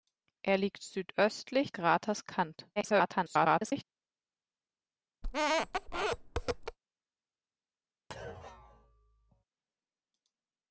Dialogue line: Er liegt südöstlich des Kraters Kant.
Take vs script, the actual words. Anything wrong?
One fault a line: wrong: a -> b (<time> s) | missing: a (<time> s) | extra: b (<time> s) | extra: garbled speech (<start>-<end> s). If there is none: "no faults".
missing: des (1.8 s)
extra: garbled speech (2.8-3.8 s)